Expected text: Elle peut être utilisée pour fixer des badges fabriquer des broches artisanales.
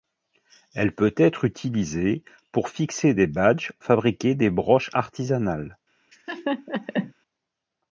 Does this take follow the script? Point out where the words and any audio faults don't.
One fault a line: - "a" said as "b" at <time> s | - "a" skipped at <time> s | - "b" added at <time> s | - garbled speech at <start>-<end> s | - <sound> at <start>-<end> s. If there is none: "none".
- laugh at 6.1-7.1 s